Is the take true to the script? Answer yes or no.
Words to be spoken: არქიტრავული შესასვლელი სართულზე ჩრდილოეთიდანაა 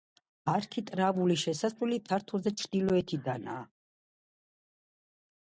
yes